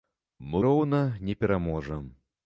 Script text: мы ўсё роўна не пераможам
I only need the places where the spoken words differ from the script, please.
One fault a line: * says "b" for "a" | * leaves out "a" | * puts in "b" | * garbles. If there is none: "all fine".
* leaves out "ўсё"